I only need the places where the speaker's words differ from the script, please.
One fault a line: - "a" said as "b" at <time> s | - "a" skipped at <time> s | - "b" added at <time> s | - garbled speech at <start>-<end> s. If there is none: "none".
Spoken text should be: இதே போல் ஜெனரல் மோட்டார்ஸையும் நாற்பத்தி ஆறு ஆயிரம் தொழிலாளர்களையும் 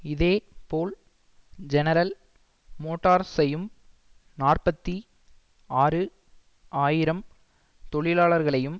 none